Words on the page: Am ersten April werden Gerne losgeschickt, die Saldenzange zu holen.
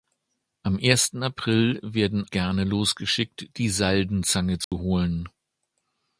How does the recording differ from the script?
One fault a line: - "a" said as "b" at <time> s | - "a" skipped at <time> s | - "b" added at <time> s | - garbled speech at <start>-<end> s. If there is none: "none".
none